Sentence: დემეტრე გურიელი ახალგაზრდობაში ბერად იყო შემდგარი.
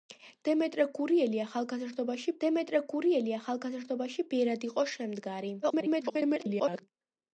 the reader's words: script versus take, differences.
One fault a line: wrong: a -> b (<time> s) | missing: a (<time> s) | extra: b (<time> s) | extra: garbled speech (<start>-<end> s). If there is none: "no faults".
extra: დემეტრე გურიელი ახალგაზრდობაში (2.4 s)
extra: garbled speech (5.6-6.8 s)